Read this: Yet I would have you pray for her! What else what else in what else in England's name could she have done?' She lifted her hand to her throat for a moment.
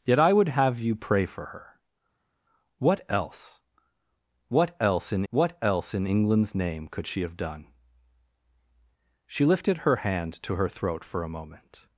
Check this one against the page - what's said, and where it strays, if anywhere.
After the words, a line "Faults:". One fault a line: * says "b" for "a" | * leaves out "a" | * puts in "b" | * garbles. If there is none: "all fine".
Yet I would have you pray for her! What else what else in what else in England's name could she have done?' She lifted her hand to her throat for a moment.
Faults:
all fine